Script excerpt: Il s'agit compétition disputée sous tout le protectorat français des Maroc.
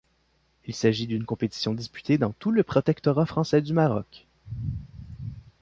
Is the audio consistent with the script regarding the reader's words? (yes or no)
no